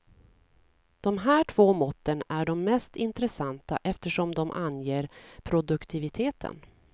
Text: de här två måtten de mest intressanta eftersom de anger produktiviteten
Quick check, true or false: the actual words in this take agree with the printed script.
false